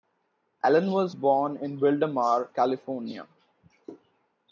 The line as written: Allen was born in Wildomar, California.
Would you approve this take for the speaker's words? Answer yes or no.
yes